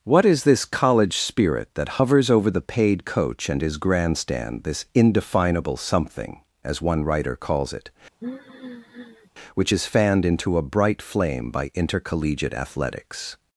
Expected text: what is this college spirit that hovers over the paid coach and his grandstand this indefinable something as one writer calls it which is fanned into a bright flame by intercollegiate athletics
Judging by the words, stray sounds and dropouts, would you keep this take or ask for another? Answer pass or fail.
fail